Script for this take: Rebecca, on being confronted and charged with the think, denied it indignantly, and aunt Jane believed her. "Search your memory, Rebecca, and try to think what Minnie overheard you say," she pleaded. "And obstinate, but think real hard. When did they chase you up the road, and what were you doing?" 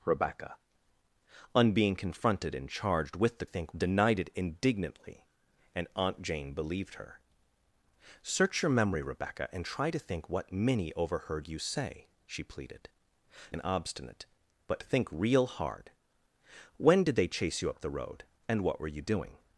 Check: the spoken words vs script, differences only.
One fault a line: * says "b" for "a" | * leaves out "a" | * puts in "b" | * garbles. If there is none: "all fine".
all fine